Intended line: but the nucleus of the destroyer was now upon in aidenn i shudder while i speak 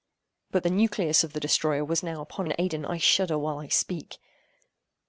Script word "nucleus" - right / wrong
right